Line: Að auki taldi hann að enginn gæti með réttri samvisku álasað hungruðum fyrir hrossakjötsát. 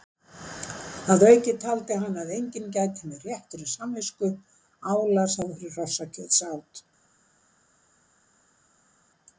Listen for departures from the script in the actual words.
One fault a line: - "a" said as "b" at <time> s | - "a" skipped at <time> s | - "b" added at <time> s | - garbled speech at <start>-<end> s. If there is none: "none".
- "hungruðum" skipped at 5.5 s